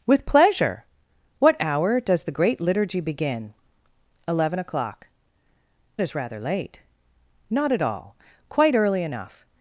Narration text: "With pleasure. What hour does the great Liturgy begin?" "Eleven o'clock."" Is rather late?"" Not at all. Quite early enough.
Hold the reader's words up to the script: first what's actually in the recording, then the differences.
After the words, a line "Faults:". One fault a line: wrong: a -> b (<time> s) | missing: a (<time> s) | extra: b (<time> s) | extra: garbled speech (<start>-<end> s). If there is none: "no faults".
"With pleasure. What hour does the great Liturgy begin?" "Eleven o'clock."" Is rather late?"" Not at all. Quite early enough.
Faults:
no faults